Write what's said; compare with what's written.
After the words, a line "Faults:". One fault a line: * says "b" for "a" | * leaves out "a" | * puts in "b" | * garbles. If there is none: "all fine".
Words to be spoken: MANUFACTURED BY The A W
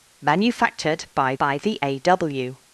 MANUFACTURED BY BY The A W
Faults:
* puts in "BY"